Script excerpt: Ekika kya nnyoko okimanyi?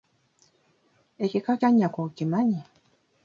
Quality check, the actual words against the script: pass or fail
pass